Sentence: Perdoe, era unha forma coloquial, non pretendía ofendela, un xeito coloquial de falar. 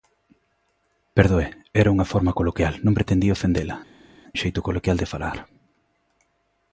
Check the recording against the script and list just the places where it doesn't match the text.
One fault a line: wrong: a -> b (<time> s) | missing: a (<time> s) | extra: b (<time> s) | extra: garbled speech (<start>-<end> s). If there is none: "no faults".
no faults